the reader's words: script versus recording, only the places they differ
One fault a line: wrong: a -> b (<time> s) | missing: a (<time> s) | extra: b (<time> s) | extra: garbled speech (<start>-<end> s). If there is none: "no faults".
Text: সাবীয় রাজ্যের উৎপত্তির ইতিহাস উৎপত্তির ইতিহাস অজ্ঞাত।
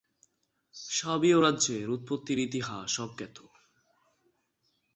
missing: উৎপত্তির ইতিহাস (2.9 s)